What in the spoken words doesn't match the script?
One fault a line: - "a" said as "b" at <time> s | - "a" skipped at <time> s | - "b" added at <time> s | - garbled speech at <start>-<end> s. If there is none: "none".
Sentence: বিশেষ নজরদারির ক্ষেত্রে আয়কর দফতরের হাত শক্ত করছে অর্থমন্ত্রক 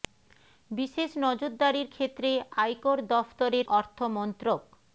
- "হাত শক্ত করছে" skipped at 3.7 s